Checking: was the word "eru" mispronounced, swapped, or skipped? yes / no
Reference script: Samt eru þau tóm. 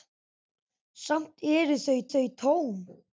no